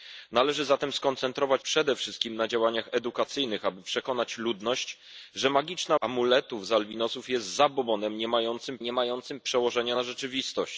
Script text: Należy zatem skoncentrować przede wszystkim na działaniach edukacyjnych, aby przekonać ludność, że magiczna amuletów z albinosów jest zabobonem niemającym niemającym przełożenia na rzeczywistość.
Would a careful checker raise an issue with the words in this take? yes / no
no